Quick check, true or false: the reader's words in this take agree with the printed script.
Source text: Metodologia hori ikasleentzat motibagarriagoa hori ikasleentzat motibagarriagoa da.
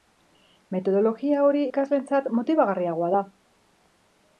false